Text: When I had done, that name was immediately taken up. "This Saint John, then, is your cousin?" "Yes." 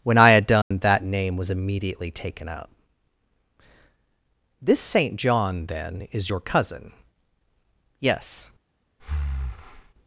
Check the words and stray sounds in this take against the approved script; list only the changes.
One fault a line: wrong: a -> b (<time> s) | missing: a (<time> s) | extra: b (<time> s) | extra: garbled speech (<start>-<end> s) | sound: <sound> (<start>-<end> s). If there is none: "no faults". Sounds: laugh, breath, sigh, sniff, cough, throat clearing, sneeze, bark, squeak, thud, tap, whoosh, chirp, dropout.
sound: dropout (0.6-0.7 s)
sound: breath (9.0-9.9 s)